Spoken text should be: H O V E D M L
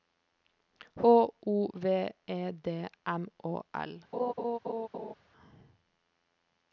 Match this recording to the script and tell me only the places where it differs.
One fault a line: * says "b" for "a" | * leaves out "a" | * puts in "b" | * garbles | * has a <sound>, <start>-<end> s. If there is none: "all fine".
* puts in "Å"
* has a laugh, 4.1-5.1 s